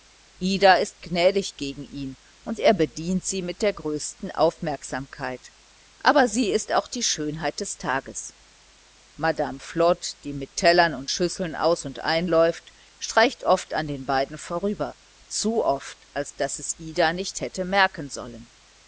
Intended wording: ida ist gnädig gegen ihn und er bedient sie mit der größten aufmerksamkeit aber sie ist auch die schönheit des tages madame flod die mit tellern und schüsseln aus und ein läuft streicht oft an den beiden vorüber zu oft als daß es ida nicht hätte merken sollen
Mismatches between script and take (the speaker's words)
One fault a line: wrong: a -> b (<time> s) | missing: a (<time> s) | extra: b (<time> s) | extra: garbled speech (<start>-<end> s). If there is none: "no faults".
no faults